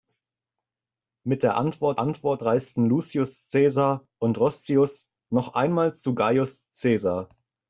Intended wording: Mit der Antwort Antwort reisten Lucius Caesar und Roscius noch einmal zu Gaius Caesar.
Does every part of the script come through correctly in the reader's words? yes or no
yes